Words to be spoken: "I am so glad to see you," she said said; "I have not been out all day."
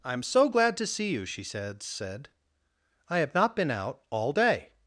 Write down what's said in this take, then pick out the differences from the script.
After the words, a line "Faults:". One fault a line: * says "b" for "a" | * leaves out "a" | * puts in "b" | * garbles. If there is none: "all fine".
"I am so glad to see you," she said said; "I have not been out all day."
Faults:
all fine